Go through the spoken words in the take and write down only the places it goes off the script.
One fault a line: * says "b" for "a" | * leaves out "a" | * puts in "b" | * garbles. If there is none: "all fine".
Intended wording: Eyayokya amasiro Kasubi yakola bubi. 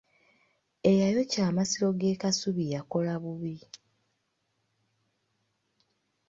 * puts in "g'e"